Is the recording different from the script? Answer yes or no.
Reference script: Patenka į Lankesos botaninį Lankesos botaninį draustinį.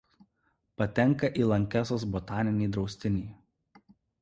yes